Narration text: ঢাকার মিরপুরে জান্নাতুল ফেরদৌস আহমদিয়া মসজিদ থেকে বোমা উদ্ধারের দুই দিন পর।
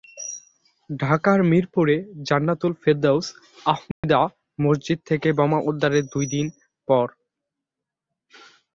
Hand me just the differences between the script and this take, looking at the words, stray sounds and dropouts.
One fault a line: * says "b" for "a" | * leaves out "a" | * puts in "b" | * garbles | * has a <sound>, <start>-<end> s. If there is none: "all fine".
* has a dropout, 3.9-4.0 s